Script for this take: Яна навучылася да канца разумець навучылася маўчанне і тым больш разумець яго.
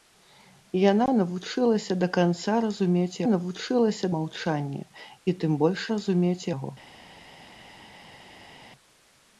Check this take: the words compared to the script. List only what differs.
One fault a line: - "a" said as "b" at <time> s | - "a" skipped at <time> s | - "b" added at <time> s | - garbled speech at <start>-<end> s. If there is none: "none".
none